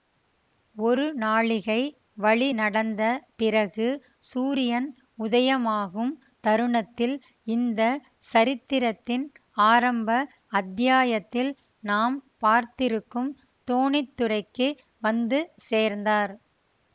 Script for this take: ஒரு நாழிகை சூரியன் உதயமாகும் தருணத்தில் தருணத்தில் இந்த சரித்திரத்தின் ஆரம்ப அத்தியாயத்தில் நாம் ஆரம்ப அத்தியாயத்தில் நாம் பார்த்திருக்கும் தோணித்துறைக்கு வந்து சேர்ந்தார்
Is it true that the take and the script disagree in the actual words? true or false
true